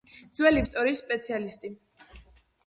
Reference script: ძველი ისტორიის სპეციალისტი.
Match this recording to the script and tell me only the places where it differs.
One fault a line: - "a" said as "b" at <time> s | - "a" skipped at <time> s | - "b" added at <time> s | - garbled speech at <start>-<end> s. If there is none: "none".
none